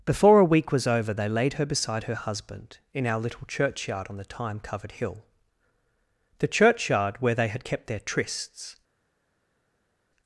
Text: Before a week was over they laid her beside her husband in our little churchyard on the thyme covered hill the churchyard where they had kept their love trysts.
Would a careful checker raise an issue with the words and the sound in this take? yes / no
yes